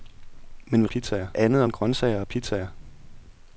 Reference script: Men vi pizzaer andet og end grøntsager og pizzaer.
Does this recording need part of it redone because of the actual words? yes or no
no